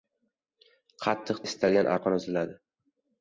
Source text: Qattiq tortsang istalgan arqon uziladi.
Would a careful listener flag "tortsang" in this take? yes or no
yes